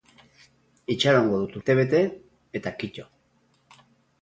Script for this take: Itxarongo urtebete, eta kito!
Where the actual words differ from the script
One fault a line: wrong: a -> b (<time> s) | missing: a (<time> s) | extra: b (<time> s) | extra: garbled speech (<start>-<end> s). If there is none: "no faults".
extra: dut (1.4 s)